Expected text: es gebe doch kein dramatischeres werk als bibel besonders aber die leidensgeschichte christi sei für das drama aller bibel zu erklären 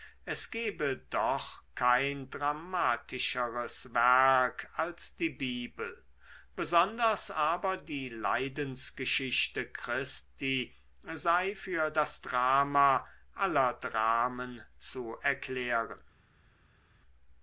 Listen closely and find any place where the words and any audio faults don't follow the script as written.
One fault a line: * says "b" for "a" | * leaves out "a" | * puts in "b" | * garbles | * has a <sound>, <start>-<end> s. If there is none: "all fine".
* puts in "die"
* says "dramen" for "bibel"